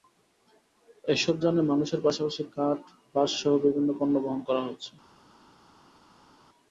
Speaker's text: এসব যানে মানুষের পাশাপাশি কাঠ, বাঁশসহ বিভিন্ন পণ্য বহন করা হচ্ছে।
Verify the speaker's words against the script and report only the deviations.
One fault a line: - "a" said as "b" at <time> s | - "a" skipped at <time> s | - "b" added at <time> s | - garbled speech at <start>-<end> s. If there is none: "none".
none